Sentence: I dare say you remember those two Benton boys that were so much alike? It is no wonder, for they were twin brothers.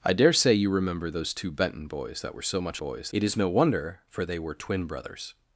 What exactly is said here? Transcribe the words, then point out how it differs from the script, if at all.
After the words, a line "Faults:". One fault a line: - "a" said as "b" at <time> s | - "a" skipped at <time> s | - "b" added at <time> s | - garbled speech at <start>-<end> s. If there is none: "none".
I dare say you remember those two Benton boys that were so much boys? It is no wonder, for they were twin brothers.
Faults:
- "alike" said as "boys" at 2.8 s